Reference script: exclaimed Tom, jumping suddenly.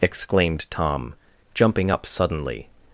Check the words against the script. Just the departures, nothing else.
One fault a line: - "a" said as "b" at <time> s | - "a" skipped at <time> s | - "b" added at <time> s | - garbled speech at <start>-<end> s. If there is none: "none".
- "up" added at 1.9 s